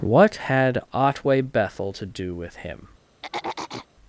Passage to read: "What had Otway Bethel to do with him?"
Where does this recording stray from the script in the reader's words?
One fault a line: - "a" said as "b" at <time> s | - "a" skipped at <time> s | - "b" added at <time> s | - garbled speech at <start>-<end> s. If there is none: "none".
none